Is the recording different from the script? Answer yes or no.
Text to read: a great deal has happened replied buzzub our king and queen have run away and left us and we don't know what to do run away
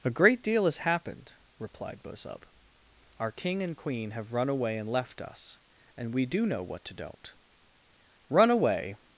yes